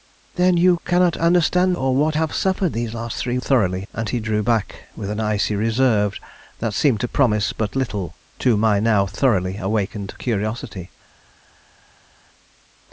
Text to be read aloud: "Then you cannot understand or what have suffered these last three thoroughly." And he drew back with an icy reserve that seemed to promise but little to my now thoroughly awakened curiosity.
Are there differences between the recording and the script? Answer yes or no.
no